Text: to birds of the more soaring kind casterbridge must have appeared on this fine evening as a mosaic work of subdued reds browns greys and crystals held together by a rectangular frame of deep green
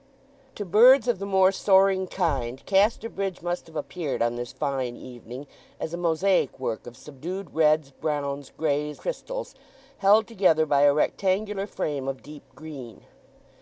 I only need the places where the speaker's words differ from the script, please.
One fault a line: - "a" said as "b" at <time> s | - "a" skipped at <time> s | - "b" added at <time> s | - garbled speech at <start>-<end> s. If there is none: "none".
- "and" skipped at 9.0 s